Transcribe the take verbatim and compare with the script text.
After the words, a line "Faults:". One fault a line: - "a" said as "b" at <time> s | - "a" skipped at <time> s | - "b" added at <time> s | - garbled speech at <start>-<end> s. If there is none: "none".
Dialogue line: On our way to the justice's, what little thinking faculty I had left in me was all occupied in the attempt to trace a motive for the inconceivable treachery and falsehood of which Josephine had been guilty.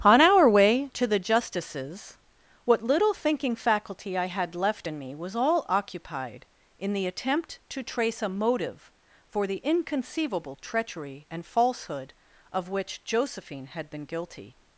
On our way to the justice's, what little thinking faculty I had left in me was all occupied in the attempt to trace a motive for the inconceivable treachery and falsehood of which Josephine had been guilty.
Faults:
none